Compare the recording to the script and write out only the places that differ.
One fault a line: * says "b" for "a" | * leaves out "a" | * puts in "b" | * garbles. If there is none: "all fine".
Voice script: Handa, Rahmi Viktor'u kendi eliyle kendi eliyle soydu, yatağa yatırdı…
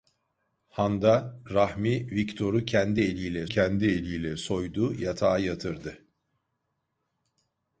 all fine